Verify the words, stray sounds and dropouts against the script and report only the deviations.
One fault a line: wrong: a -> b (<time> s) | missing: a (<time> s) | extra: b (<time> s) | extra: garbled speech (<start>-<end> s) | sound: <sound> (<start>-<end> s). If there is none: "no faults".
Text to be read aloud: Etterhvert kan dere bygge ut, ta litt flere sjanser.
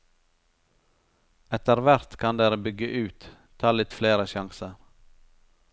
no faults